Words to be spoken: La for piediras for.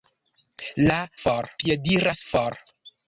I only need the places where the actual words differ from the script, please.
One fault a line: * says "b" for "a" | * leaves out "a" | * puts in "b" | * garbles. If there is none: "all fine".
all fine